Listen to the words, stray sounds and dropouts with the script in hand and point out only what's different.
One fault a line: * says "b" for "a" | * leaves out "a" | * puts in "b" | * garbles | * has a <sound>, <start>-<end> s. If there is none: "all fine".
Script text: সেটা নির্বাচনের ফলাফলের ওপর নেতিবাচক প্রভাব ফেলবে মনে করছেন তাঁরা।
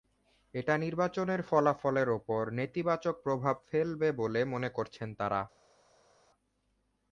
* says "এটা" for "সেটা"
* puts in "বলে"